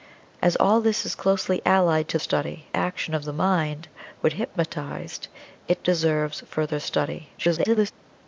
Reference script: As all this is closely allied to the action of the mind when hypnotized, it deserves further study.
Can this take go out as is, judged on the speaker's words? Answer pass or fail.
fail